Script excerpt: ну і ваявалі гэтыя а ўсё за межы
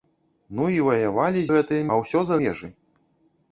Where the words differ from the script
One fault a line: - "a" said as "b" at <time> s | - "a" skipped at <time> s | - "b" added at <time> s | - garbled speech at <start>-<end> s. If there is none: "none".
none